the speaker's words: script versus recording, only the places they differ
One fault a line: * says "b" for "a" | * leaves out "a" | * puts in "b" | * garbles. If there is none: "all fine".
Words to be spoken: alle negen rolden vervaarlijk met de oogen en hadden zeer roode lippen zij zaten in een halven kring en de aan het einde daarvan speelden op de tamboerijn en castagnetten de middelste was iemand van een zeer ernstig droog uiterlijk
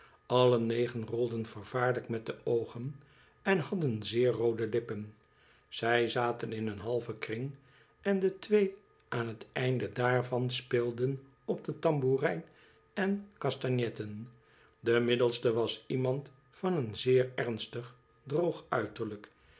* puts in "twee"